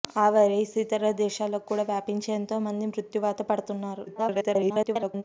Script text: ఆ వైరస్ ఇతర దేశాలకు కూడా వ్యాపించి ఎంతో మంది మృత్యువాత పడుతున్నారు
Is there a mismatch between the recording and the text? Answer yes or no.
yes